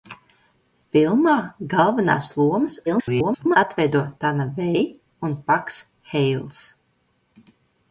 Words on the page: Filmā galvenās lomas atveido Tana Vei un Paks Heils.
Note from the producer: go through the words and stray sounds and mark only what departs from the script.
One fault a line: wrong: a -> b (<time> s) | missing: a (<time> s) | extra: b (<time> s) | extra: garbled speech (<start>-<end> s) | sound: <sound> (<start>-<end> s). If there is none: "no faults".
extra: garbled speech (2.9-3.6 s)